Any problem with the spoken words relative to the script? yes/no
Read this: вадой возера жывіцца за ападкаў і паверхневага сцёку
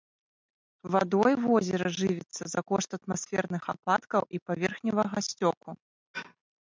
yes